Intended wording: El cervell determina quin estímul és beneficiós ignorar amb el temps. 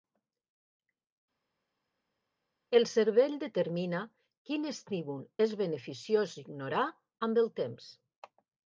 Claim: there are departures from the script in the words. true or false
false